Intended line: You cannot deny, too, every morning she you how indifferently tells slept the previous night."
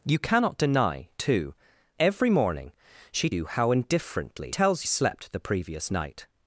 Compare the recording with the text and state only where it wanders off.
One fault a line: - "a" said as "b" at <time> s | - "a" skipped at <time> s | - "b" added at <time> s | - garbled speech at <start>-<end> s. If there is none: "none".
none